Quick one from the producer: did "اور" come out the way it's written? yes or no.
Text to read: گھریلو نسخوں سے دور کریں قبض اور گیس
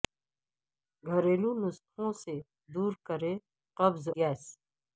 no